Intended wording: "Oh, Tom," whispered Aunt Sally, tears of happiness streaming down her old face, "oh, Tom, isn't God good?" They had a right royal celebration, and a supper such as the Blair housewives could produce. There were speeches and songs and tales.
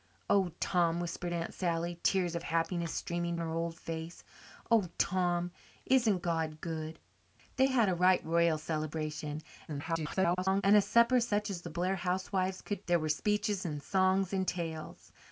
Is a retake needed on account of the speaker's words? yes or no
yes